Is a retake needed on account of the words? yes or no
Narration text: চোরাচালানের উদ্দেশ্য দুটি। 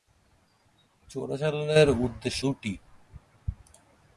no